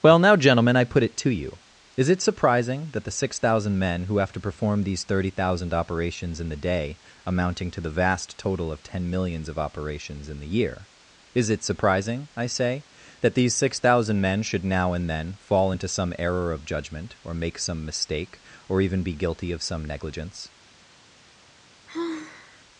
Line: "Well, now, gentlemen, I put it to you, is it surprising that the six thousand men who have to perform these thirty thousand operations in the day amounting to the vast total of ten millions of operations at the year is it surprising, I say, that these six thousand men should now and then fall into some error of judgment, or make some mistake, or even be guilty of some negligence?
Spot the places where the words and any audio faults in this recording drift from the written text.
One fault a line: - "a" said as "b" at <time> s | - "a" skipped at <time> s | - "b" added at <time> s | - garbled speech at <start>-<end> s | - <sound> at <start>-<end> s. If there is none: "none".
- "at" said as "in" at 10.3 s
- sigh at 21.9-22.7 s